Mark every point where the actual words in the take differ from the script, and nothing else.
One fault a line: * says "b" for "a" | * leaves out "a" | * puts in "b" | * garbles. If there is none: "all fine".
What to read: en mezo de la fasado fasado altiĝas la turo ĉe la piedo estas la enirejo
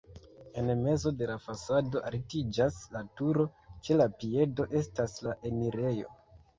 * leaves out "fasado"